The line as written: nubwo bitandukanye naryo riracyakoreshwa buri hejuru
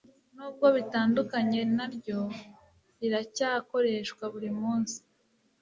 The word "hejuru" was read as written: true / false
false